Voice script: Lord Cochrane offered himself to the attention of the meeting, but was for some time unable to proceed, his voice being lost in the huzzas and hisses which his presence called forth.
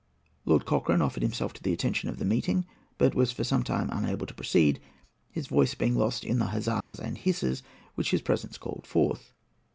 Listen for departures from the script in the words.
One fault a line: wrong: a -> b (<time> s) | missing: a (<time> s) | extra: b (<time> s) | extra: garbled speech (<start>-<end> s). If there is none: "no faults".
no faults